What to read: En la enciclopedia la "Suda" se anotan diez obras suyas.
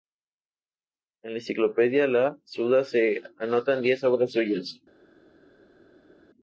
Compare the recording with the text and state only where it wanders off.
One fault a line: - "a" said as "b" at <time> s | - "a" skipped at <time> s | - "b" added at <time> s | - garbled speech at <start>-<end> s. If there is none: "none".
none